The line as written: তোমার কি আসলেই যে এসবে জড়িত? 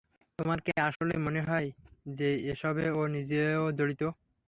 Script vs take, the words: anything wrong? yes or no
yes